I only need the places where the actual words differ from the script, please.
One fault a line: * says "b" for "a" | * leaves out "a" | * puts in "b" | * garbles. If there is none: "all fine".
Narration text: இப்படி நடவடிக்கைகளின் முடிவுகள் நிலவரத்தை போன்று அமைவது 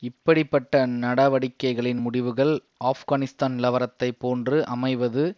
* puts in "பட்ட"
* puts in "ஆப்கானிஸ்தான்"